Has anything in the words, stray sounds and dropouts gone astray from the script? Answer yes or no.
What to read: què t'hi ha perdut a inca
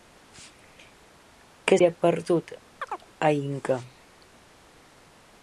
yes